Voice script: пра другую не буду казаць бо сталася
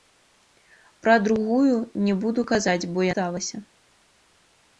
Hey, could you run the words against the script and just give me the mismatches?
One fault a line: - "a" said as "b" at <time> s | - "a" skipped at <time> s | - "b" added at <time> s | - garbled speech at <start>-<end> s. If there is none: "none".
none